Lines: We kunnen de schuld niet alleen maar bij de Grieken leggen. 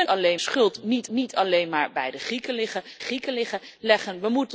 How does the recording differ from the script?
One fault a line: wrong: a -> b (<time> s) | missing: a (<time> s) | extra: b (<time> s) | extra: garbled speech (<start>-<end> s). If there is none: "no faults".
wrong: kunnen -> alleen (0.1 s)
extra: niet (1.1 s)
extra: Grieken (3.0 s)